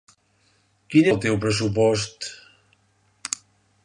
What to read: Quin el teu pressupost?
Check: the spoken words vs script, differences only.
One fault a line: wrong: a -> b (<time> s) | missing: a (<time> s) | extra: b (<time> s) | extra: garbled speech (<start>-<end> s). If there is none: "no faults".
no faults